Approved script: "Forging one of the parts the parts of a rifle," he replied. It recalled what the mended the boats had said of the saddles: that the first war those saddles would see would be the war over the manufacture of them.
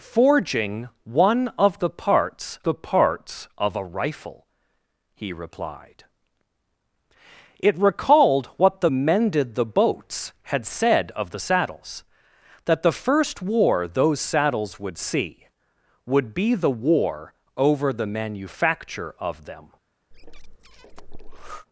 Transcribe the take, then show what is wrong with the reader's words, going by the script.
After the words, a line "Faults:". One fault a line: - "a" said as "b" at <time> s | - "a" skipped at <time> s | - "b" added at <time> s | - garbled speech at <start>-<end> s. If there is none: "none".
"Forging one of the parts the parts of a rifle," he replied. It recalled what the mended the boats had said of the saddles: that the first war those saddles would see would be the war over the manufacture of them.
Faults:
none